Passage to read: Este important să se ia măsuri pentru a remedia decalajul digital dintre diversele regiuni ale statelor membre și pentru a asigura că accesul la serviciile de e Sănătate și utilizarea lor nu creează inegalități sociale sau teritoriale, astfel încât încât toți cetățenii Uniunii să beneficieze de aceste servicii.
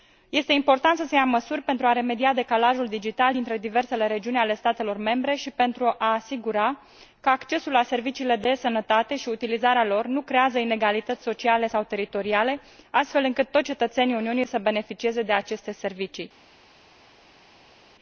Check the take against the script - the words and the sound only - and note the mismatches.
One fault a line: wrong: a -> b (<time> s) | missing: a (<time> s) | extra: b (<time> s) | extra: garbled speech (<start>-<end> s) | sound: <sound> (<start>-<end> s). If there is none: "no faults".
missing: încât (13.5 s)